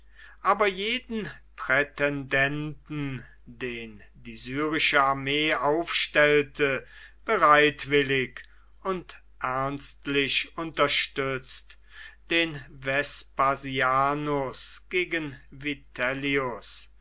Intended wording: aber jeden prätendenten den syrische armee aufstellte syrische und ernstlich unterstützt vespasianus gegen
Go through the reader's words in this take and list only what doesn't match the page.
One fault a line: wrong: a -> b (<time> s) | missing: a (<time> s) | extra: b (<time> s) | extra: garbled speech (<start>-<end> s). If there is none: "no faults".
extra: die (4.1 s)
wrong: syrische -> bereitwillig (7.3 s)
extra: den (12.3 s)